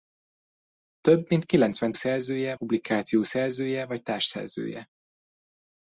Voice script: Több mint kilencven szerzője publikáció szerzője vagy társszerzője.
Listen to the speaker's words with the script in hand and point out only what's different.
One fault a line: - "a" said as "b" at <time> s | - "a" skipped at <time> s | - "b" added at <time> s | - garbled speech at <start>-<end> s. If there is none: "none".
none